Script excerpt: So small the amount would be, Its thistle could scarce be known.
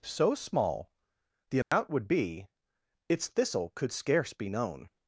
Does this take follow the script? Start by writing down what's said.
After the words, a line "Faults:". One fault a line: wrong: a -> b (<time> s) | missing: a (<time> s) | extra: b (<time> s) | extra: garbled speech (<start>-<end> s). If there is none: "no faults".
So small the amount would be, Its thistle could scarce be known.
Faults:
no faults